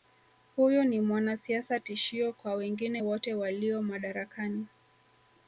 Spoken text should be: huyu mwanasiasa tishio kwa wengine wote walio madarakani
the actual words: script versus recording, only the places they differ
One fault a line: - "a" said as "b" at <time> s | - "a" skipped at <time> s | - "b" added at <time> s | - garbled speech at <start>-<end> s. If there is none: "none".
- "ni" added at 0.8 s